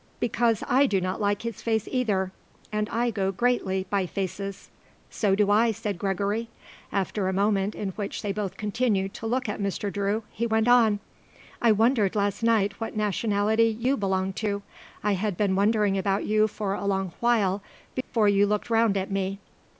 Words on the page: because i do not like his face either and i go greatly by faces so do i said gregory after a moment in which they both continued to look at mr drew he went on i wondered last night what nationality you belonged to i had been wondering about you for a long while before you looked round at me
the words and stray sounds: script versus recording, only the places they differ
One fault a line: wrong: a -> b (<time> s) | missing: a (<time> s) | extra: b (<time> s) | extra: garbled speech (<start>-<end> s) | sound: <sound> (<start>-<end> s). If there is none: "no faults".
sound: dropout (18.0-18.1 s)